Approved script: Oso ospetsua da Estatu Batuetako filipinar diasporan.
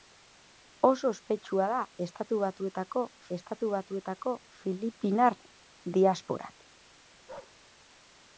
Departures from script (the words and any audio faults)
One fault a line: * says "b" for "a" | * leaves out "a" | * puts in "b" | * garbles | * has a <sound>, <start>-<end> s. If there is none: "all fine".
* puts in "Estatu Batuetako"
* has a bark, 7.3-7.6 s